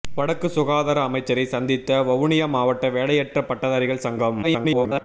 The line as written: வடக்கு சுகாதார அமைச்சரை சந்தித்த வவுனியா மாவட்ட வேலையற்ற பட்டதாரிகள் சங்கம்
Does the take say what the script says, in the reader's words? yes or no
no